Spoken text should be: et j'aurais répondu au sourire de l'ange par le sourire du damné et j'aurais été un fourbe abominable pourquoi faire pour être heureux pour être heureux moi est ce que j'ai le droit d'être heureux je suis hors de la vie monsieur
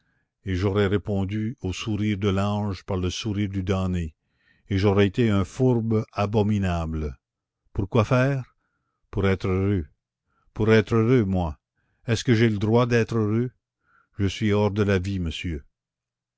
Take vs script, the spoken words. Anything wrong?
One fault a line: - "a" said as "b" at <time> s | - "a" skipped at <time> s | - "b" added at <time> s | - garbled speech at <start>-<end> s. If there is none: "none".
none